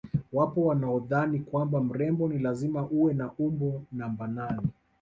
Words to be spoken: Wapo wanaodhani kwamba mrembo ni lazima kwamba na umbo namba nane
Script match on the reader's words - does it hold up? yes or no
no